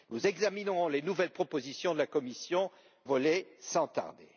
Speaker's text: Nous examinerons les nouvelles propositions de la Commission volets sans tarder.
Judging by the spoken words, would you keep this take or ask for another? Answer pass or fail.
pass